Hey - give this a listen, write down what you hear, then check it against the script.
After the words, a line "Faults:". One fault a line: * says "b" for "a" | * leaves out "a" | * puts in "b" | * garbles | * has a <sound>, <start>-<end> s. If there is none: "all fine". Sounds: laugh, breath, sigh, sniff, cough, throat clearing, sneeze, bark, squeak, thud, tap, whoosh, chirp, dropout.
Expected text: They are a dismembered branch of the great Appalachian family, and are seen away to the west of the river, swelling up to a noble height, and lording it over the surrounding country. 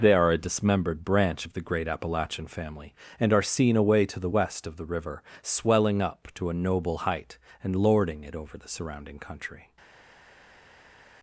They are a dismembered branch of the great Appalachian family, and are seen away to the west of the river, swelling up to a noble height, and lording it over the surrounding country.
Faults:
all fine